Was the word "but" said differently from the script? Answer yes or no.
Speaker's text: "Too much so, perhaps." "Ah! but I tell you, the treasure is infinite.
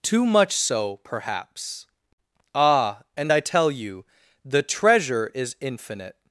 yes